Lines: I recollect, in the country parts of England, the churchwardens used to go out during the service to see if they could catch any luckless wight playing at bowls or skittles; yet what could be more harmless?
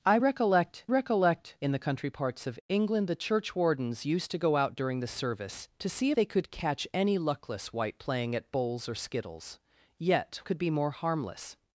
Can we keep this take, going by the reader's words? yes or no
no